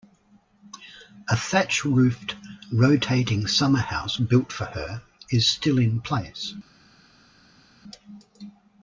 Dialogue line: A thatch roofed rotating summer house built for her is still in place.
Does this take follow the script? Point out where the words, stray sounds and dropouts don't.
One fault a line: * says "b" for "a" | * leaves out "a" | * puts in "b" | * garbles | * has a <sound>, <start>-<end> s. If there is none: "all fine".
all fine